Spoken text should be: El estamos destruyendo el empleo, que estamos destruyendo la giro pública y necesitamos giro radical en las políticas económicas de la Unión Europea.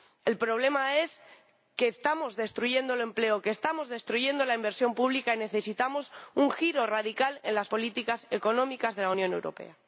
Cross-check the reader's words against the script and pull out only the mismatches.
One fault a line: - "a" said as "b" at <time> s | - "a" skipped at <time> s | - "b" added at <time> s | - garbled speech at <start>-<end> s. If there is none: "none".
- "problema es que" added at 0.4 s
- "giro" said as "inversión" at 4.5 s
- "un" added at 6.3 s